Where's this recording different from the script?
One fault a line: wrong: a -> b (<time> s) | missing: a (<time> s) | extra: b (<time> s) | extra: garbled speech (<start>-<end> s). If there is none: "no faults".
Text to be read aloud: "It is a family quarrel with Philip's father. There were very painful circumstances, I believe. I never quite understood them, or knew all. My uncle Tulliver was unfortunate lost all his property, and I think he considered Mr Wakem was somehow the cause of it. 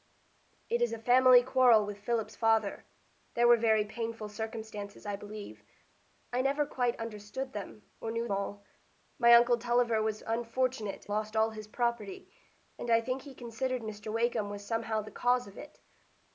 no faults